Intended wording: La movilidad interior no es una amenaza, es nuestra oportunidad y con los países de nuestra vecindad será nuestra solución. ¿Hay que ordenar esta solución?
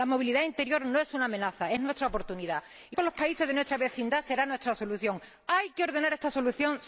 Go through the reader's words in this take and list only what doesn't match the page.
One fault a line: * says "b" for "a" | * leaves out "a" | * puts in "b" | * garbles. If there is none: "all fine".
all fine